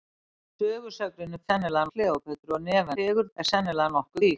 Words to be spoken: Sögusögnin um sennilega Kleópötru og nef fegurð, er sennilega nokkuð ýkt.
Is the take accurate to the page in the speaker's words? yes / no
yes